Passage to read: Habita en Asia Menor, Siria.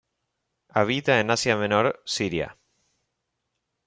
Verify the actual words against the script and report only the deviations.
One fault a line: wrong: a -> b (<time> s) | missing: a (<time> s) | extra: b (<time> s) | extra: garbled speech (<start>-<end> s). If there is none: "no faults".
no faults